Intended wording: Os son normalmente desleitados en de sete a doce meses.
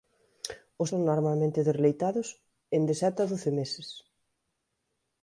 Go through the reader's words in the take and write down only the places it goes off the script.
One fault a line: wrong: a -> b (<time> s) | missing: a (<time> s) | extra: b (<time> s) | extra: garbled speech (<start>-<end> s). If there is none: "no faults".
no faults